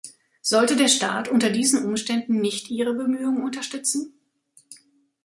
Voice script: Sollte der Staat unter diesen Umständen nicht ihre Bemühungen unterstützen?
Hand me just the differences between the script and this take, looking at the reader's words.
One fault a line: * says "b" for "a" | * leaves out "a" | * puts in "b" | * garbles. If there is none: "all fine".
all fine